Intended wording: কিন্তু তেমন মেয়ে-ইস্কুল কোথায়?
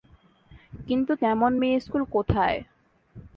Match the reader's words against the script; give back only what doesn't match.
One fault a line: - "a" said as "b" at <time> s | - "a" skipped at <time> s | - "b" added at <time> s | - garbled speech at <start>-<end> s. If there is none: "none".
none